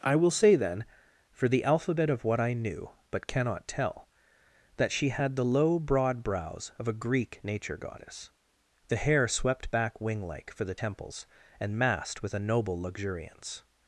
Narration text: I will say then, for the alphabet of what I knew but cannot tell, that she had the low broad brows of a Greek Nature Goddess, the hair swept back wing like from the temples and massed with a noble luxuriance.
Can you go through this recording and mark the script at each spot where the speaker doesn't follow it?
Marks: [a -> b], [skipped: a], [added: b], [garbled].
I will say then, for the alphabet of what I knew but cannot tell, that she had the low broad brows of a Greek Nature Goddess, the hair swept back wing like [from -> for] the temples and massed with a noble luxuriance.